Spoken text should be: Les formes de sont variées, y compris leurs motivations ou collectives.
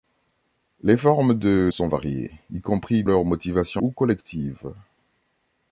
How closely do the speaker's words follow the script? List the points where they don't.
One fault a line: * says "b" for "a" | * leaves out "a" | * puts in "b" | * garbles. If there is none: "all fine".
all fine